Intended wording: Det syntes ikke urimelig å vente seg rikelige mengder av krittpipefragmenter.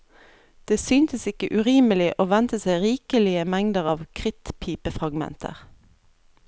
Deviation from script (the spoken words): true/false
false